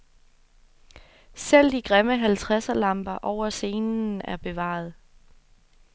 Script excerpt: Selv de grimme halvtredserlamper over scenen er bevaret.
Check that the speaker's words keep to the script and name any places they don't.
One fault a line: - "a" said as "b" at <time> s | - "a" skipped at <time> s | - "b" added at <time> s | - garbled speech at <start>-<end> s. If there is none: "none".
none